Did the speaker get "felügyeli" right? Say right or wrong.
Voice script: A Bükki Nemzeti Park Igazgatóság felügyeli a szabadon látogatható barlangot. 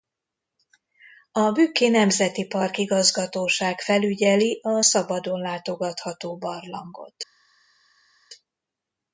right